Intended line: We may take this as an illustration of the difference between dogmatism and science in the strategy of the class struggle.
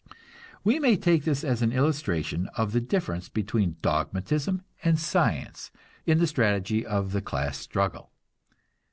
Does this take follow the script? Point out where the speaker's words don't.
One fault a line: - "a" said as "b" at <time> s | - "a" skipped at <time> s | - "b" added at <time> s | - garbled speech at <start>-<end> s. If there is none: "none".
none